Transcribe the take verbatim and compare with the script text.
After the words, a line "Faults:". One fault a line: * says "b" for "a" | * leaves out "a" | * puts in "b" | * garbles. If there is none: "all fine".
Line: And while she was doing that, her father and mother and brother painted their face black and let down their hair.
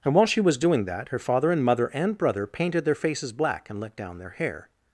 And while she was doing that, her father and mother and brother painted their faces black and let down their hair.
Faults:
* says "faces" for "face"